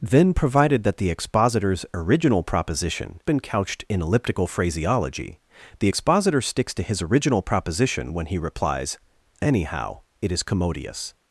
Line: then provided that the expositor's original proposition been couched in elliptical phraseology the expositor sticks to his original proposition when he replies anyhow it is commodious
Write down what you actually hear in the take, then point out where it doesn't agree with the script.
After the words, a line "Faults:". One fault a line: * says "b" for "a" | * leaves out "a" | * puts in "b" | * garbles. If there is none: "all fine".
then provided that the expositor's original proposition been couched in elliptical phraseology the expositor sticks to his original proposition when he replies anyhow it is commodious
Faults:
all fine